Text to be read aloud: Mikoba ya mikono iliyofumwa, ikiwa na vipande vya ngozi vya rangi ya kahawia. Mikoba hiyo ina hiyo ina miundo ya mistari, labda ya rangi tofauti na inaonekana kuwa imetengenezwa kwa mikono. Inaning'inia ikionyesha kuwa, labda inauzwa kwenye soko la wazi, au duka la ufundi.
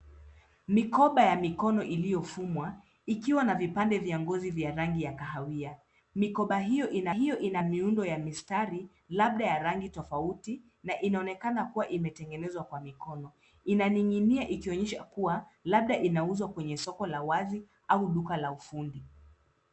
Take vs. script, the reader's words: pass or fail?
pass